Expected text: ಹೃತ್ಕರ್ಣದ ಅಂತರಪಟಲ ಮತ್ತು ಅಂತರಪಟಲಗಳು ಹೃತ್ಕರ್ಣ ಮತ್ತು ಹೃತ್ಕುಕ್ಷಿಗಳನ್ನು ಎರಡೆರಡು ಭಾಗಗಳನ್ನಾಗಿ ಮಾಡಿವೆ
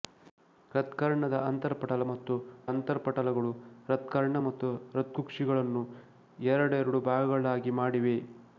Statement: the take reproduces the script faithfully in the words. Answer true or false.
true